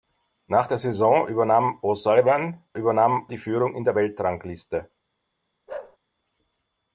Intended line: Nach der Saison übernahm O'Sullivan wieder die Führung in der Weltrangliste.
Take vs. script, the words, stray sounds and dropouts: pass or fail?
fail